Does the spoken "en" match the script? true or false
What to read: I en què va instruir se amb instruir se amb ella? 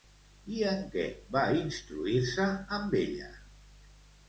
true